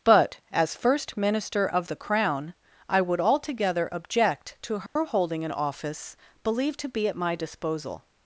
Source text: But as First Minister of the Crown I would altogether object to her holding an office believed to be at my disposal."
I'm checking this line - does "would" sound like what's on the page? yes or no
yes